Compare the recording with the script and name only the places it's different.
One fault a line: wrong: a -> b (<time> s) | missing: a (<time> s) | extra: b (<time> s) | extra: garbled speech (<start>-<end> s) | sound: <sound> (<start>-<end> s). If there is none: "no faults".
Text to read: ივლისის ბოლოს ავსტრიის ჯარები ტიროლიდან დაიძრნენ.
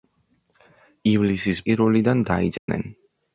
missing: ბოლოს ავსტრიის ჯარები (1.6 s)
sound: dropout (2.6-2.7 s)